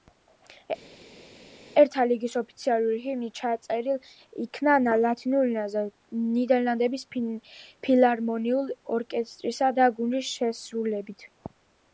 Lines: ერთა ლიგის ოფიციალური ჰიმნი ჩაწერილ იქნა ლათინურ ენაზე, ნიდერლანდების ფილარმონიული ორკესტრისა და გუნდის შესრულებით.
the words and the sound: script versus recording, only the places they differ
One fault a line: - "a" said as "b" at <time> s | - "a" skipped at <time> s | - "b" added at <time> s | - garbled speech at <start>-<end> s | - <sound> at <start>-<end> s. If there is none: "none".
none